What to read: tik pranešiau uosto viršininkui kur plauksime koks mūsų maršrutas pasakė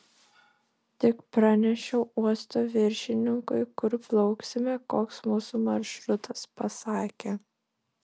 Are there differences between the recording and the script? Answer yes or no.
no